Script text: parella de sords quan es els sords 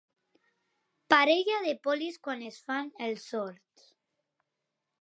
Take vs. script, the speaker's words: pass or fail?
fail